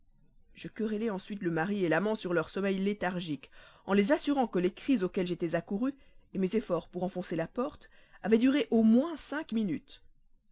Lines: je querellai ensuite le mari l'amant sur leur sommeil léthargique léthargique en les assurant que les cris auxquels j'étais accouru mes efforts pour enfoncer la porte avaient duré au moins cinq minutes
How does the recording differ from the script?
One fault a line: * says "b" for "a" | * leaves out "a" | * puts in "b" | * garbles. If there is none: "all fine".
* leaves out "léthargique"